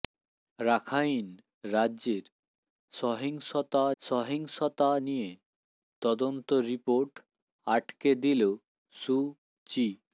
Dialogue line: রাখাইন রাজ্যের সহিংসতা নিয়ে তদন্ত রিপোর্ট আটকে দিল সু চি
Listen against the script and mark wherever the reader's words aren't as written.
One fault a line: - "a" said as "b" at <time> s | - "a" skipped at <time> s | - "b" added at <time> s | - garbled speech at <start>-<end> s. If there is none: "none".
- "সহিংসতা" added at 4.0 s